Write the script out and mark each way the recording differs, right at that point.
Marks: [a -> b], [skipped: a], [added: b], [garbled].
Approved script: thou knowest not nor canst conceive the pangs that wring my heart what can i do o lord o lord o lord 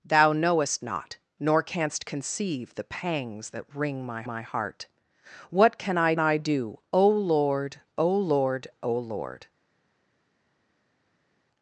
thou knowest not nor canst conceive the pangs that wring my [added: my] heart what can i [added: i] do o lord o lord o lord